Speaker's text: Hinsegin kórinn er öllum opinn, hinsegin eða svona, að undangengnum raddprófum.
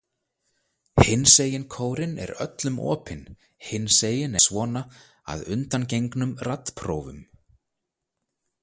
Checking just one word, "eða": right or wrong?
wrong